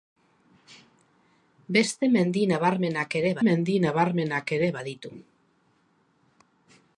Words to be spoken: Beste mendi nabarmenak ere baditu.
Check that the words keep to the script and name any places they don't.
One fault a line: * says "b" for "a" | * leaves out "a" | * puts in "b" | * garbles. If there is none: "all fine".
* puts in "mendi nabarmenak ere"